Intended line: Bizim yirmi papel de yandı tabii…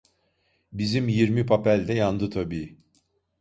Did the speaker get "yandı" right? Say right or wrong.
right